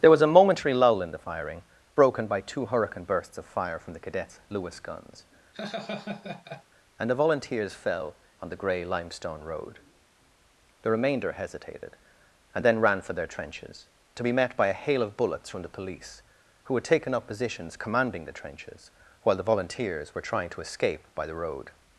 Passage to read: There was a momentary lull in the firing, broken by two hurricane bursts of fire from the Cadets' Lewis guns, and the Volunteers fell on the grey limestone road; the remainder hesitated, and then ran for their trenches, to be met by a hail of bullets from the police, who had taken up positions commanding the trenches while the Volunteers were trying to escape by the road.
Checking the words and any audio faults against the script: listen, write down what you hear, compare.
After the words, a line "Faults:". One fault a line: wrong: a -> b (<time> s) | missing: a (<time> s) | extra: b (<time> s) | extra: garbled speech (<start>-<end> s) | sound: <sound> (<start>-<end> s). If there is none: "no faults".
There was a momentary lull in the firing, broken by two hurricane bursts of fire from the Cadets' Lewis guns, and the Volunteers fell on the grey limestone road; the remainder hesitated, and then ran for their trenches, to be met by a hail of bullets from the police, who had taken up positions commanding the trenches while the Volunteers were trying to escape by the road.
Faults:
sound: laugh (5.5-6.6 s)